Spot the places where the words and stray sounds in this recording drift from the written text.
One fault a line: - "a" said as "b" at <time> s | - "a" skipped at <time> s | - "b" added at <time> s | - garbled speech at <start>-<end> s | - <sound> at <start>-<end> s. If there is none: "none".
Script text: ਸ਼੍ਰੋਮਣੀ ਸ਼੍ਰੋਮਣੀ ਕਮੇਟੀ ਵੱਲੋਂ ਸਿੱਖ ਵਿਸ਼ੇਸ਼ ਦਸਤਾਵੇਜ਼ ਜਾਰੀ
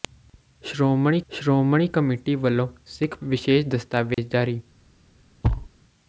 - dropout at 4.1-4.2 s
- thud at 5.4-5.7 s